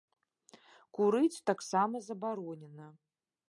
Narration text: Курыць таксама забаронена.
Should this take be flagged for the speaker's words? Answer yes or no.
no